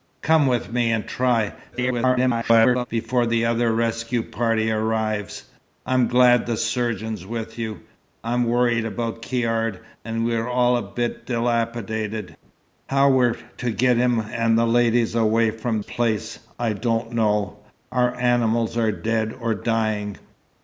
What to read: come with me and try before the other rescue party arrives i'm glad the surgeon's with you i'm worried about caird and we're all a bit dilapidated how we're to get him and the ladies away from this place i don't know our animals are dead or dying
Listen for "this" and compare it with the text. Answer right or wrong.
wrong